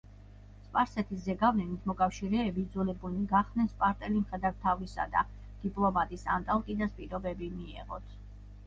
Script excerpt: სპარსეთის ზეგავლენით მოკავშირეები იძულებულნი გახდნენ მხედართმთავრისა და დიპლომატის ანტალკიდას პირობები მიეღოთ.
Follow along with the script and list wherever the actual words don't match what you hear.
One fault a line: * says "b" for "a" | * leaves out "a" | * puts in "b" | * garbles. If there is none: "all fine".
* puts in "სპარტელი"